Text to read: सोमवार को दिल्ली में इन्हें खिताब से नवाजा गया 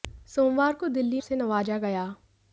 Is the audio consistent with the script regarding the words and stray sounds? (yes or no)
no